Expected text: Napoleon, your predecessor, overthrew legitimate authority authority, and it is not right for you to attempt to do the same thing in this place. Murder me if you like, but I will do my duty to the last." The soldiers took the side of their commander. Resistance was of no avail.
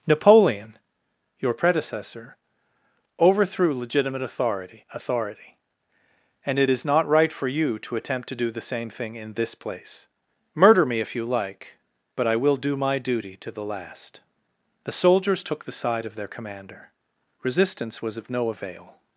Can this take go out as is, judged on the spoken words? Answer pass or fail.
pass